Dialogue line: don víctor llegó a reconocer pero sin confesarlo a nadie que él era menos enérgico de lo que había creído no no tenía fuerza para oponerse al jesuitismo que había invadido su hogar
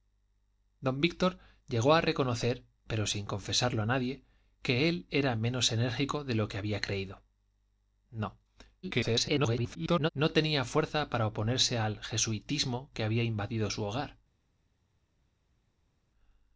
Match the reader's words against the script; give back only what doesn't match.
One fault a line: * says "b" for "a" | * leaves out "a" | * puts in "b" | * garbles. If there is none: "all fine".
* garbles